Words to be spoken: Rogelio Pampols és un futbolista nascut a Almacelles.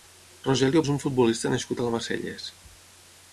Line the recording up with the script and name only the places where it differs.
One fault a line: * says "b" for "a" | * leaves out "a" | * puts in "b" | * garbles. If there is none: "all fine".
* leaves out "Pampols"